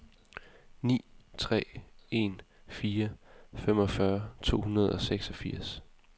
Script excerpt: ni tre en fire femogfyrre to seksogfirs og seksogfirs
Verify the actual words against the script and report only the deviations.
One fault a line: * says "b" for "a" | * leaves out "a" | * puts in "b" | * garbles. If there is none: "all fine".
* says "hundrede" for "seksogfirs"